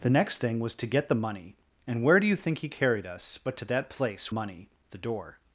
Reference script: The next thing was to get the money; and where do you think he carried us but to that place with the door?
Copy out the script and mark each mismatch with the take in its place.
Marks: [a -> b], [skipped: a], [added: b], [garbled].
The next thing was to get the money; and where do you think he carried us but to that place [with -> money] the door?